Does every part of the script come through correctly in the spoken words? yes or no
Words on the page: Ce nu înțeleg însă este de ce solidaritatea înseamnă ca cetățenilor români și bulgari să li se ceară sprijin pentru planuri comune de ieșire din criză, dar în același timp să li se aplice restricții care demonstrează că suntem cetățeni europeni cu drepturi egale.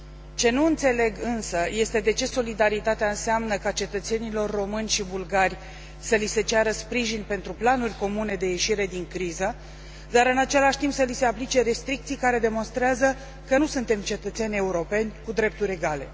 no